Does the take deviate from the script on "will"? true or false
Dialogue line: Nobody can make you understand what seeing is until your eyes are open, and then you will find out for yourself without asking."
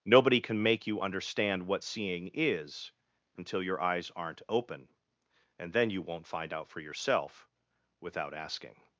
true